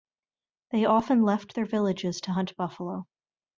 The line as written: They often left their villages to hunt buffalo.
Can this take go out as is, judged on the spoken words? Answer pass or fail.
pass